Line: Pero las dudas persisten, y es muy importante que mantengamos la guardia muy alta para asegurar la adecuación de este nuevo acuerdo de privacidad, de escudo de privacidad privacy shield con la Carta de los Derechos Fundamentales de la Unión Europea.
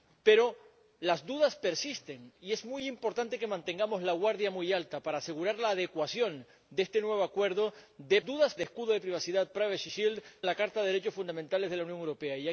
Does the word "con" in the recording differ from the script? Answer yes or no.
yes